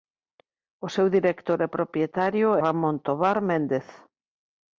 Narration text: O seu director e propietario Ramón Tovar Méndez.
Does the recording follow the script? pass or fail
pass